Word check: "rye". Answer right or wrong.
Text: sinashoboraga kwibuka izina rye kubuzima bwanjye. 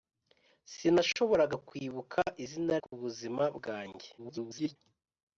wrong